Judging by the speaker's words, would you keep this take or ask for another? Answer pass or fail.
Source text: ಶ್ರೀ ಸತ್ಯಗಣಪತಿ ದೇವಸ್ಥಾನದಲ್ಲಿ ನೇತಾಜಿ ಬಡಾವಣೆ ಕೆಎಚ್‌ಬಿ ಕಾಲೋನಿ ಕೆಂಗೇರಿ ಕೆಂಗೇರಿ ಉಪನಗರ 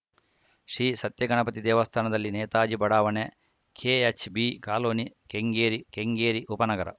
pass